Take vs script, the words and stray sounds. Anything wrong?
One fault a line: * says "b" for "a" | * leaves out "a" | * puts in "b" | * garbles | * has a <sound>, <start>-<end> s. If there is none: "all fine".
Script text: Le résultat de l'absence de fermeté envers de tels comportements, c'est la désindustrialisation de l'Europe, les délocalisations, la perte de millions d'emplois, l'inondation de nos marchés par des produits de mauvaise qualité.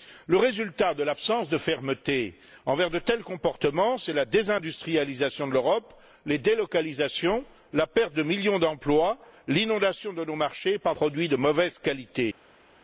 * leaves out "des"